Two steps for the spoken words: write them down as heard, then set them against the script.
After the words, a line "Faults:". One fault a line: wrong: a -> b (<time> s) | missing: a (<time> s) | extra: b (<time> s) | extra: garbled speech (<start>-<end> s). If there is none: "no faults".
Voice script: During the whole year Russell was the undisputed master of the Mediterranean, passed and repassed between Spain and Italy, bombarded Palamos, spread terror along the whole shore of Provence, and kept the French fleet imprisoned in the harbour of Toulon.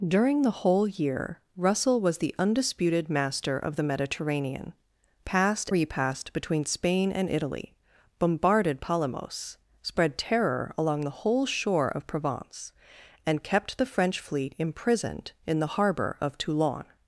During the whole year Russell was the undisputed master of the Mediterranean, passed repassed between Spain and Italy, bombarded Palamos, spread terror along the whole shore of Provence, and kept the French fleet imprisoned in the harbour of Toulon.
Faults:
missing: and (5.7 s)